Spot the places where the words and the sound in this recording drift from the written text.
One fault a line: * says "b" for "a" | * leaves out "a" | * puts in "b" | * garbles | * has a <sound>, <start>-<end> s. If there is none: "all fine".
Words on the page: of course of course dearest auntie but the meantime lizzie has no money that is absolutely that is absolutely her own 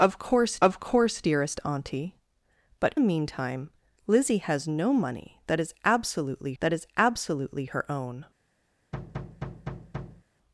* has a thud, 8.9-10.2 s